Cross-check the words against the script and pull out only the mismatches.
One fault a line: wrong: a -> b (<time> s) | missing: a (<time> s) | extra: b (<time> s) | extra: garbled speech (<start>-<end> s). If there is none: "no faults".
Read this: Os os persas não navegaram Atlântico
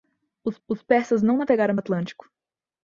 no faults